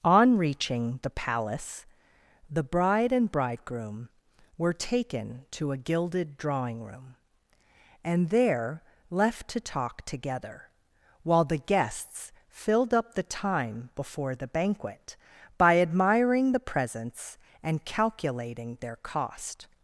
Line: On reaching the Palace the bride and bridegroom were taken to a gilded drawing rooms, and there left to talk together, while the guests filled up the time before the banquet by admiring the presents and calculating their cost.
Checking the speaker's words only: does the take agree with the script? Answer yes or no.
no